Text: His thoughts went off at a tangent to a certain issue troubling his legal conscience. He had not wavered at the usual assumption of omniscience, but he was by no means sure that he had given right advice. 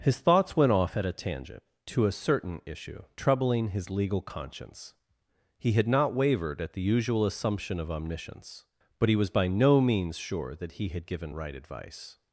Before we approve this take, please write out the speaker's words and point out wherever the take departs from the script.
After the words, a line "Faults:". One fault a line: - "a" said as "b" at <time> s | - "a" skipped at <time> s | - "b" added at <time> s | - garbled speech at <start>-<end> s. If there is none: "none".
His thoughts went off at a tangent to a certain issue troubling his legal conscience. He had not wavered at the usual assumption of omniscience, but he was by no means sure that he had given right advice.
Faults:
none